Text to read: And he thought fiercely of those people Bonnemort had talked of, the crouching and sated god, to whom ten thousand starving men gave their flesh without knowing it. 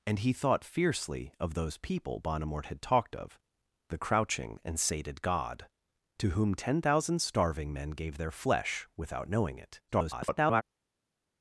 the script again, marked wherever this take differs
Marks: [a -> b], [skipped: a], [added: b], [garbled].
And he thought fiercely of those people Bonnemort had talked of, the crouching and sated god, to whom ten thousand starving men gave their flesh without knowing it. [garbled]